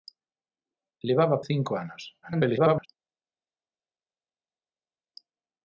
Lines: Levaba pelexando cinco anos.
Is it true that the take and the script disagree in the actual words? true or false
true